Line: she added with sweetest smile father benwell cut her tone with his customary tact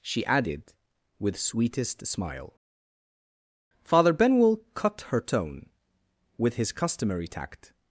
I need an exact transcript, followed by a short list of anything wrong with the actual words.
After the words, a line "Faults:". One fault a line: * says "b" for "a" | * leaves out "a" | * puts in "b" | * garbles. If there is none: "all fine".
she added with sweetest smile father benwell cut her tone with his customary tact
Faults:
all fine